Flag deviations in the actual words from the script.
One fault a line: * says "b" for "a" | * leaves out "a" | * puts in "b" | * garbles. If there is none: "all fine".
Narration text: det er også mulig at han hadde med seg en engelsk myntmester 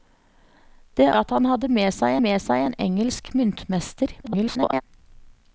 * leaves out "også mulig"
* puts in "med seg"
* garbles